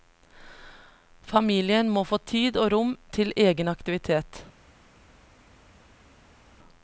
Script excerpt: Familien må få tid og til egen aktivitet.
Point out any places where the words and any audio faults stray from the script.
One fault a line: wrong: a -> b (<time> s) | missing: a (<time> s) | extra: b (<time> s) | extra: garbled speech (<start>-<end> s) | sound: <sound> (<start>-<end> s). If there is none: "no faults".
extra: rom (2.7 s)